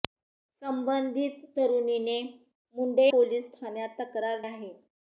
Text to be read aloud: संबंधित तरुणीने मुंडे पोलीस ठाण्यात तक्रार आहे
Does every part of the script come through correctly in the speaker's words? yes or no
yes